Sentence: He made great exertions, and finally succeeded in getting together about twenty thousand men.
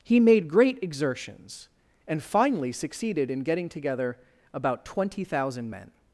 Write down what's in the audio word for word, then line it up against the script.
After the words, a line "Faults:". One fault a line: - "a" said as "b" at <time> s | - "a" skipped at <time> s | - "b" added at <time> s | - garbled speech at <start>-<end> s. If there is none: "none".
He made great exertions, and finally succeeded in getting together about twenty thousand men.
Faults:
none